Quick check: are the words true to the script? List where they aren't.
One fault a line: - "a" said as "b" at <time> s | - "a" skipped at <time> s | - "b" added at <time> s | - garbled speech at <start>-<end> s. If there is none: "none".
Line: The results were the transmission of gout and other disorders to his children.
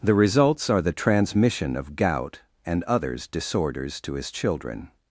- "were" said as "are" at 0.7 s
- "other" said as "others" at 2.9 s